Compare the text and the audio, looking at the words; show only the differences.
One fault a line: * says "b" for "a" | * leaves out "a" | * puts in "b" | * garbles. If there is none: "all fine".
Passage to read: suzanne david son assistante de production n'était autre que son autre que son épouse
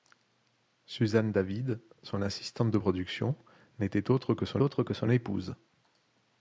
all fine